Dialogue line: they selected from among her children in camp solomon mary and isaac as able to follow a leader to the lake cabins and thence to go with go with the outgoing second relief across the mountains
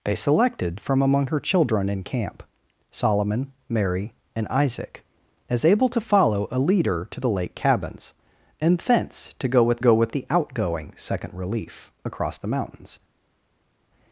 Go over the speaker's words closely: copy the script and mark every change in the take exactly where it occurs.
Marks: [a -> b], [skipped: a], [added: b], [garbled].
they selected from among her children in camp solomon mary and isaac as able to follow a leader to the lake cabins and thence to go with go with the outgoing second relief across the mountains